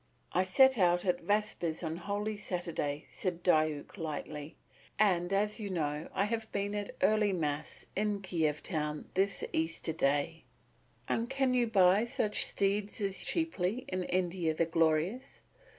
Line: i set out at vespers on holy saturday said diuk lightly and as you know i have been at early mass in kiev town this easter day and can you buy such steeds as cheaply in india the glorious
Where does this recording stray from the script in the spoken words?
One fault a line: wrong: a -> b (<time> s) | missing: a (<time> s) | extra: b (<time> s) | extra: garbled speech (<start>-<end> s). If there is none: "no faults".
no faults